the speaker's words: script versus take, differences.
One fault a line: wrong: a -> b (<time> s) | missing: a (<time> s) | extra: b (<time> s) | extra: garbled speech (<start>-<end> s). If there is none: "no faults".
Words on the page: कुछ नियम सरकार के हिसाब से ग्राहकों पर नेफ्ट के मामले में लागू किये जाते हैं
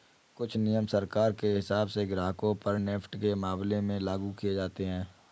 no faults